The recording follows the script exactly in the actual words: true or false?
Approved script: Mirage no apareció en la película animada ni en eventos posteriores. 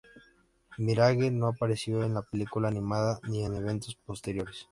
true